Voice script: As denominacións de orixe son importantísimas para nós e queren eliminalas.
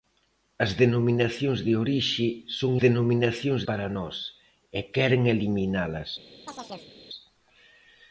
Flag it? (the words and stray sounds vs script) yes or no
yes